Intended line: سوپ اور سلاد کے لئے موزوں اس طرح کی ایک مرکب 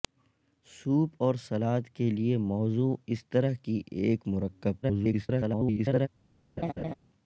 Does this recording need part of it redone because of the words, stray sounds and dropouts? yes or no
yes